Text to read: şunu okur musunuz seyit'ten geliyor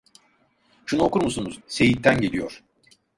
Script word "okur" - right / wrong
right